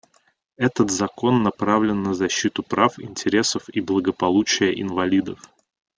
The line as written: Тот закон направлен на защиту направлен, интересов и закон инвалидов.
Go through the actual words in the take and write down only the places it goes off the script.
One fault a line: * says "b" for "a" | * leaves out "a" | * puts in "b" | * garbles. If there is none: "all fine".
* says "Этот" for "Тот"
* says "прав" for "направлен"
* says "благополучия" for "закон"